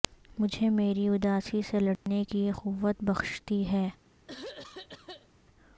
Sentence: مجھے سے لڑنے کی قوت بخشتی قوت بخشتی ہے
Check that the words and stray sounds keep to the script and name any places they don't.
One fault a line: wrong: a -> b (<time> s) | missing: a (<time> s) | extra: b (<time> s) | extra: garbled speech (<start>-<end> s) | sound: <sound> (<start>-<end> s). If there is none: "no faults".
extra: میری اداسی (0.7 s)
sound: dropout (2.0-2.1 s)
missing: قوت بخشتی (3.6 s)
sound: throat clearing (4.3-5.3 s)